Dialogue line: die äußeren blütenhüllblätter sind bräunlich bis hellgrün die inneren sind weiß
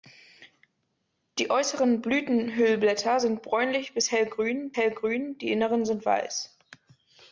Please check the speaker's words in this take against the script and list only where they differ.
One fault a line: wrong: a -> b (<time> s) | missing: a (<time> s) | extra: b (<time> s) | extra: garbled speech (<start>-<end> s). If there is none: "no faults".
extra: hellgrün (4.8 s)